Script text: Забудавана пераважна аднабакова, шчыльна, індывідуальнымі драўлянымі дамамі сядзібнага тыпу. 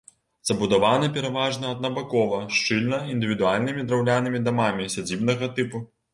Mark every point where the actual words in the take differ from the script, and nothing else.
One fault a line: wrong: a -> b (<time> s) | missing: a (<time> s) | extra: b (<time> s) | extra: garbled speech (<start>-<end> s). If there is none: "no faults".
no faults